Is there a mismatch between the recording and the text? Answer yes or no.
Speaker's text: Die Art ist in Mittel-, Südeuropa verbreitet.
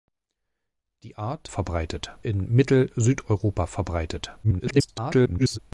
yes